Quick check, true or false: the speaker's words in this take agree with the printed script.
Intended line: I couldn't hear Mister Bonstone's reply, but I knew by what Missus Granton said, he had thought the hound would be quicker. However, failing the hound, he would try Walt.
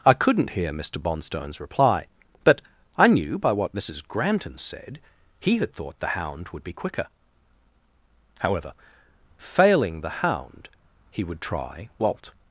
true